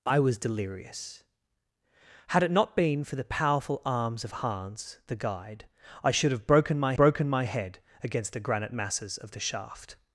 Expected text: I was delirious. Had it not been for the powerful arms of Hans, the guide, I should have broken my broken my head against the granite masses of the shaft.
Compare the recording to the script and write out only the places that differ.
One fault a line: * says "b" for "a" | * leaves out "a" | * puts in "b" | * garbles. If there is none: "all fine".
all fine